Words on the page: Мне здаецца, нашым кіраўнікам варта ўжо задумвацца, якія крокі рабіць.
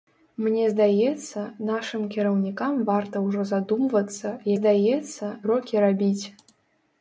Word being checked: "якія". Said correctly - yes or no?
no